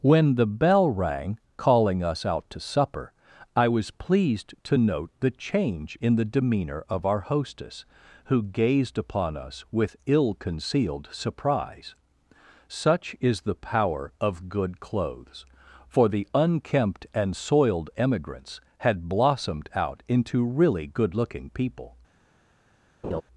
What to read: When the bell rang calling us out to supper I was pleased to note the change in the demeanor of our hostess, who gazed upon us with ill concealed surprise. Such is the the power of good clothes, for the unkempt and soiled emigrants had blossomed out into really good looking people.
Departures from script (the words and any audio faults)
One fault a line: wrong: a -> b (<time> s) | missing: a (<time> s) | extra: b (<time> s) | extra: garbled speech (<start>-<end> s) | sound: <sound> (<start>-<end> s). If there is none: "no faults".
missing: the (13.6 s)
sound: laugh (23.0-23.2 s)